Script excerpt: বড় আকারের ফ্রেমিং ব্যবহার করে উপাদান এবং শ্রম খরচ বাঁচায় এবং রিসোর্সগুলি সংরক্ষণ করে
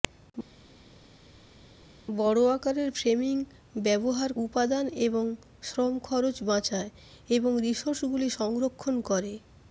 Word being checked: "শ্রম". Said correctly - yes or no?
yes